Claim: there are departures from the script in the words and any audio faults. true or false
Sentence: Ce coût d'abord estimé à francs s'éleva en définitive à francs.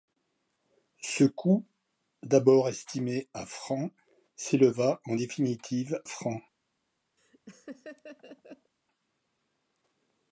true